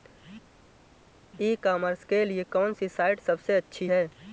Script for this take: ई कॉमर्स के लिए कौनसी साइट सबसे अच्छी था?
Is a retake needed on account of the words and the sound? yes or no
yes